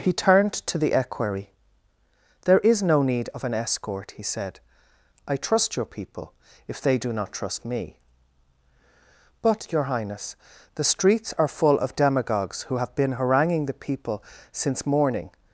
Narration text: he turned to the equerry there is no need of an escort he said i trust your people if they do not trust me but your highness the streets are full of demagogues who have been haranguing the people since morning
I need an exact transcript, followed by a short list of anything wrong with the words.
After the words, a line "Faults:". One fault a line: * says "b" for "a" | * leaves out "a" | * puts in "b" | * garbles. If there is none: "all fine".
he turned to the equerry there is no need of an escort he said i trust your people if they do not trust me but your highness the streets are full of demagogues who have been haranguing the people since morning
Faults:
all fine